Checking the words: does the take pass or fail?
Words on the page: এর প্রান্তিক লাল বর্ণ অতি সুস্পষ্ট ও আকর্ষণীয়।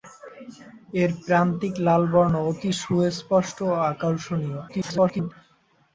fail